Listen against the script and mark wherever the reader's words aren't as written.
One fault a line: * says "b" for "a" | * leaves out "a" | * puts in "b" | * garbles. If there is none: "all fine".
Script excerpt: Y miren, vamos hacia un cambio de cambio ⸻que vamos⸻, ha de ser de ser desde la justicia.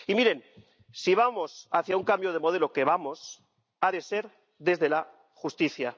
* puts in "si"
* says "modelo" for "cambio"
* leaves out "de ser"